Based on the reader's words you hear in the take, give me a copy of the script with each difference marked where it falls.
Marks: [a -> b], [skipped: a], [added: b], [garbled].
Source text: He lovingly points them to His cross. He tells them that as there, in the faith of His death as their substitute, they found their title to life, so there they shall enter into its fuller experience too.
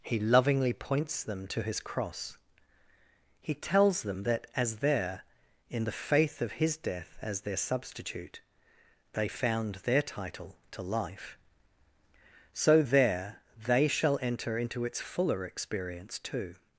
He lovingly points them to His cross. He tells them that as there, in the faith of His death as their substitute, they found their title to life, so there they shall enter into its fuller experience too.